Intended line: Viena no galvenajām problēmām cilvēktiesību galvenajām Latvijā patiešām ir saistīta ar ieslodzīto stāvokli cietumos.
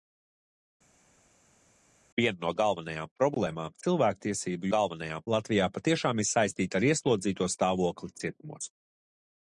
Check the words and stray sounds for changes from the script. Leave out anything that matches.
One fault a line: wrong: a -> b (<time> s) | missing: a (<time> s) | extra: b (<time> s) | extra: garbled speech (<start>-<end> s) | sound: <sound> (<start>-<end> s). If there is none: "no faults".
no faults